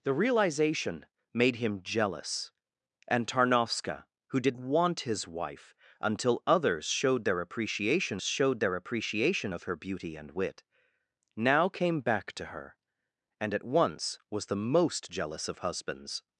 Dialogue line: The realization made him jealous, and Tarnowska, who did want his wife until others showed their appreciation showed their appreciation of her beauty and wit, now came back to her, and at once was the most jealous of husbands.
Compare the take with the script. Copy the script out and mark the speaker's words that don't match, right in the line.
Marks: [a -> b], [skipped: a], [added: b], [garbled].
The realization made him jealous, and Tarnowska, who did want his wife until others showed their appreciation showed their appreciation of her beauty and wit, now came back to her, and at once was the most jealous of husbands.